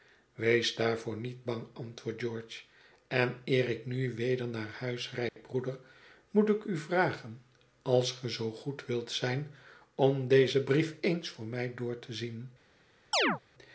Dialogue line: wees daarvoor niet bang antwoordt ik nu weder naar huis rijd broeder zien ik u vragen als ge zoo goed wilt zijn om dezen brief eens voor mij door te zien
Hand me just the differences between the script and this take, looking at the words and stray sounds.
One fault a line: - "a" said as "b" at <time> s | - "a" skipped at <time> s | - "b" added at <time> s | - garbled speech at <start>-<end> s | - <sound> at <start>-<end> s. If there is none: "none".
- "george en eer" added at 2.2 s
- dropout at 5.3-5.4 s
- "zien" said as "moet" at 6.3 s
- chirp at 13.1-13.4 s